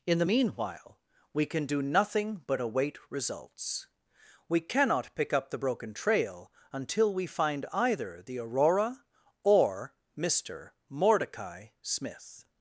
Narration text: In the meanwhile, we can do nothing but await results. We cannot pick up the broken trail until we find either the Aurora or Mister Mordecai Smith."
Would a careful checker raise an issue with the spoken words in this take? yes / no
no